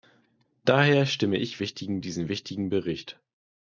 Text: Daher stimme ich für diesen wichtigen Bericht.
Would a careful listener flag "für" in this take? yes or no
yes